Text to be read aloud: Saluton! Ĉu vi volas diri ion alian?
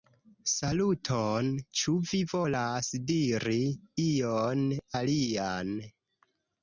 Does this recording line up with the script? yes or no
yes